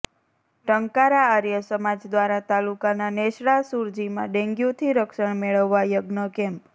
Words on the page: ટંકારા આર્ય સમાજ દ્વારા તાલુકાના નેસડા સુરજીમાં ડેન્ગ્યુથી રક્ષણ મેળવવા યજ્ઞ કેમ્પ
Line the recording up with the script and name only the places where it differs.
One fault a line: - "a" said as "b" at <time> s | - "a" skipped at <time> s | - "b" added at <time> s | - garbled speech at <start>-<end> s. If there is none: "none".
none